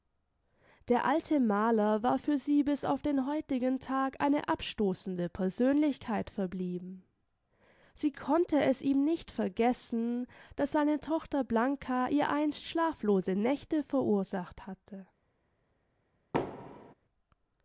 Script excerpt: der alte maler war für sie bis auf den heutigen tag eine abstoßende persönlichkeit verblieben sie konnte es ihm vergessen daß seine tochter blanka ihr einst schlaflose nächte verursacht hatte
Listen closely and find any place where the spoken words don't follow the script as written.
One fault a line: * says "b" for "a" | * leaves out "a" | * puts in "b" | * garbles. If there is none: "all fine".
* puts in "nicht"